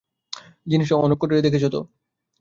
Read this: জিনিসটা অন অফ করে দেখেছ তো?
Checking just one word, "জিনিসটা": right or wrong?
right